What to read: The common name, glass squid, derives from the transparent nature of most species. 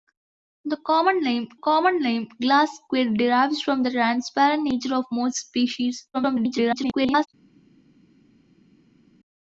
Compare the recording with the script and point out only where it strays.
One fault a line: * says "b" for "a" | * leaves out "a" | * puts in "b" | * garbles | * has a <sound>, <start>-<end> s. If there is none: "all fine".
* puts in "common name"
* garbles